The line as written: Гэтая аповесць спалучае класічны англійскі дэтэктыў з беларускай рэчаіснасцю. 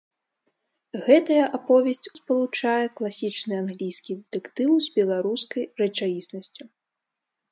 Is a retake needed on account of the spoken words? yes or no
no